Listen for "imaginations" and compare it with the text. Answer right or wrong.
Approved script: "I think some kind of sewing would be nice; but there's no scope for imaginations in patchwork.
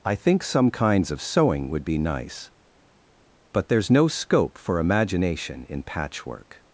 wrong